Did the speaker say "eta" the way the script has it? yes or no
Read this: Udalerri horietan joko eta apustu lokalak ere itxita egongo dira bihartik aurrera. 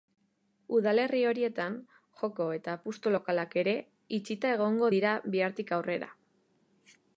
yes